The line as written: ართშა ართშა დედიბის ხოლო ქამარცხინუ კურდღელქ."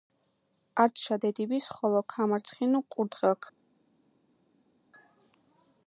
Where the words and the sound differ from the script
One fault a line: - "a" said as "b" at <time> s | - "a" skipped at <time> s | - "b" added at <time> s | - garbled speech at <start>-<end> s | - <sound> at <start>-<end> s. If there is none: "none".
- "ართშა" skipped at 1.2 s